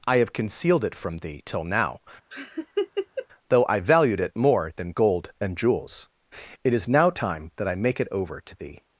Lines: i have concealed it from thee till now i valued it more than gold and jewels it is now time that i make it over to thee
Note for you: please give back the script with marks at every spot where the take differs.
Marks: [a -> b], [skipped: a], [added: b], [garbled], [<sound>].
i have concealed it from thee till now [laugh] [added: though] i valued it more than gold and jewels it is now time that i make it over to thee